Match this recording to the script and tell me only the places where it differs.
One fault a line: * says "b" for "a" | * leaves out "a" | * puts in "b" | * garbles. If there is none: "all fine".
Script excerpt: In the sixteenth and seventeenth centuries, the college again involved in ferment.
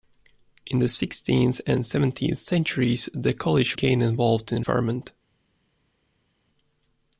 all fine